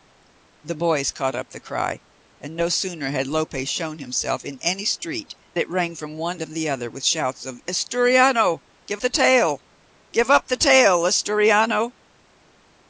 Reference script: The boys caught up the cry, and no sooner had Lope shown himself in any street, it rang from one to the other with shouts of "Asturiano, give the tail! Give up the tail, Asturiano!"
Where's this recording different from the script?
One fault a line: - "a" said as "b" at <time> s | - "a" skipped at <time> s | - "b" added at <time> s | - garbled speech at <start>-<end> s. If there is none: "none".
none